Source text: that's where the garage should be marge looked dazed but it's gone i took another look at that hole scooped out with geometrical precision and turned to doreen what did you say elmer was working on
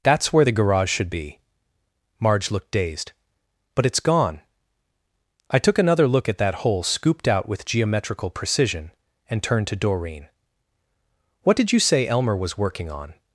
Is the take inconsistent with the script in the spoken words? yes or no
no